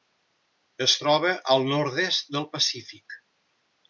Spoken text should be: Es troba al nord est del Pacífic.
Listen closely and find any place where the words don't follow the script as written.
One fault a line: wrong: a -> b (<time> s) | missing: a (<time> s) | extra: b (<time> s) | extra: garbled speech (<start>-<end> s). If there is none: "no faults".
no faults